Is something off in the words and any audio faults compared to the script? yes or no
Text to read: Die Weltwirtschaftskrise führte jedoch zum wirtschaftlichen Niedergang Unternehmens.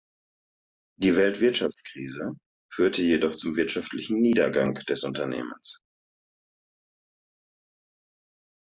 yes